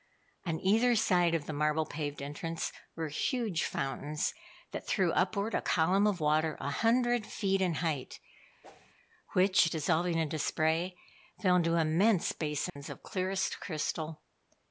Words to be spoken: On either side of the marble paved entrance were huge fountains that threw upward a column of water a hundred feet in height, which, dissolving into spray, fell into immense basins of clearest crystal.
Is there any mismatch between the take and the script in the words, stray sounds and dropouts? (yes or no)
yes